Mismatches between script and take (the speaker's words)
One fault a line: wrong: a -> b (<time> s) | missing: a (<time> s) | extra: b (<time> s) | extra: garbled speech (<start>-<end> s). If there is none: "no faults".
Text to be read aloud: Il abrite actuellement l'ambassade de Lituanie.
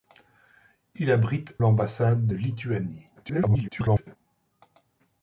missing: actuellement (1.6 s)
extra: garbled speech (3.2-4.2 s)